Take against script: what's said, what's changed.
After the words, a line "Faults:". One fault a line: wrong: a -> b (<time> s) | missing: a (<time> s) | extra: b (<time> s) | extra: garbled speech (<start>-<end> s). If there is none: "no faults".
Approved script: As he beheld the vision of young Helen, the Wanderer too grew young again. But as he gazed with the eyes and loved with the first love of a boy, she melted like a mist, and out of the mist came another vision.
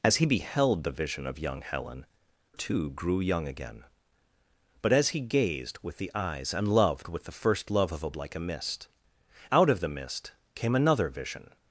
As he beheld the vision of young Helen, too grew young again. But as he gazed with the eyes and loved with the first love of a like a mist, out of the mist came another vision.
Faults:
missing: the Wanderer (2.0 s)
missing: boy she melted (8.1 s)
missing: and (8.9 s)